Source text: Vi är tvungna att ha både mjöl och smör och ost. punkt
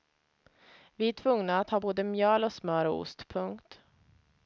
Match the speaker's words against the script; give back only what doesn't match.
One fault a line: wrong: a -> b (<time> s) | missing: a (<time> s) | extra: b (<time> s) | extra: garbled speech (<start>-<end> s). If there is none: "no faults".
no faults